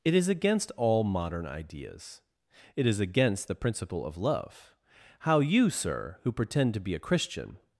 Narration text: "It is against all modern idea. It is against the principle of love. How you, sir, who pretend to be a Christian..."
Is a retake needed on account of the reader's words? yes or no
yes